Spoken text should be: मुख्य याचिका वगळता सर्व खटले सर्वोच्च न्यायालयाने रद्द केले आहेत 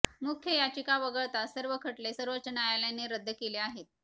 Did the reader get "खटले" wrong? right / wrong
right